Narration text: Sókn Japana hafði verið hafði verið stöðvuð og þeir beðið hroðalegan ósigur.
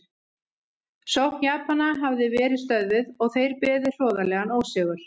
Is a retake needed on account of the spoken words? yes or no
yes